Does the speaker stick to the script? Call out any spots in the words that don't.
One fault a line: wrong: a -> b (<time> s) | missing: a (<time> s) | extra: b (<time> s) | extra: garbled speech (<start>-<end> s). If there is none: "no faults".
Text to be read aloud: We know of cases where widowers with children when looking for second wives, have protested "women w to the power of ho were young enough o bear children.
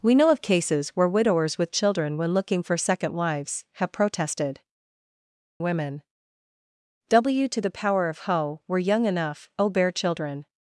no faults